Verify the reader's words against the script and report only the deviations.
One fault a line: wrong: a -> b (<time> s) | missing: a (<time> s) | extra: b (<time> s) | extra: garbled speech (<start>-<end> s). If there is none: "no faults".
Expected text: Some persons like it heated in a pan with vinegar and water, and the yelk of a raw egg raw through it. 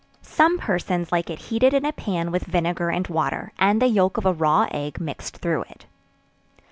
wrong: raw -> mixed (5.0 s)